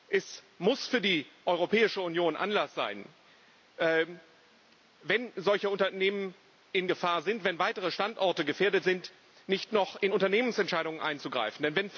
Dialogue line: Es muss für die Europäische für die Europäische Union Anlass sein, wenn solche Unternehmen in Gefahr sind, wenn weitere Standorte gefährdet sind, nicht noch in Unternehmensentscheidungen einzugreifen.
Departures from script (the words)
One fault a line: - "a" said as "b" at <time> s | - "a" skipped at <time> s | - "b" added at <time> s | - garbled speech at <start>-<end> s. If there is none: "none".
- "für die Europäische" skipped at 2.0 s